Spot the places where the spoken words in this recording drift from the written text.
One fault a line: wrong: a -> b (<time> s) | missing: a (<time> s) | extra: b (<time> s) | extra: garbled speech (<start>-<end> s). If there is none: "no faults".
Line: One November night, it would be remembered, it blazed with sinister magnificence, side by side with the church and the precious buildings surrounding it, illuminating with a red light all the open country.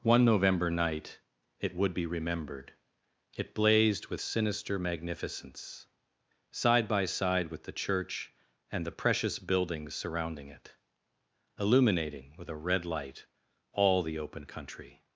no faults